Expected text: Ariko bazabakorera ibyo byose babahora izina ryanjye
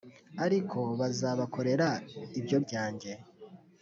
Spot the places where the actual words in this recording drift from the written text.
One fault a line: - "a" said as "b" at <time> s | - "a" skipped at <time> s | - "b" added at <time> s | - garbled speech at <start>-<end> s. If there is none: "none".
- "byose babahora izina" skipped at 2.6 s